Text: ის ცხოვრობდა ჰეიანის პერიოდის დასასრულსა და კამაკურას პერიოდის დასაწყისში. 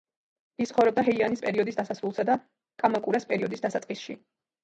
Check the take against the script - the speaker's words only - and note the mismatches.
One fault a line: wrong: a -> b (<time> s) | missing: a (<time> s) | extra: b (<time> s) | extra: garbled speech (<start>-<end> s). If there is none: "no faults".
no faults